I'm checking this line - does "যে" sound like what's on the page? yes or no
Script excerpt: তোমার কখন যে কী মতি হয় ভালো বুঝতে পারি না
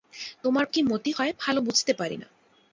no